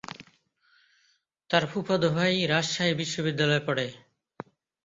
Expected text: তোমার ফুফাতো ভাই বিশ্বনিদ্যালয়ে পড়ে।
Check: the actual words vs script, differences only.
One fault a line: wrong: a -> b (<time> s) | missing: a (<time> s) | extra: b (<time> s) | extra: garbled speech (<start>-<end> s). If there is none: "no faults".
wrong: তোমার -> তার (1.5 s)
extra: রাজশাহী (2.5 s)